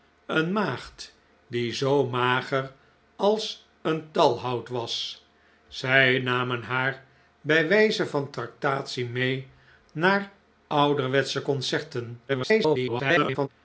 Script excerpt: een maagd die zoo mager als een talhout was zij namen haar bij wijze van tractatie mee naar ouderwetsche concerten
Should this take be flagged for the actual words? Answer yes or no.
yes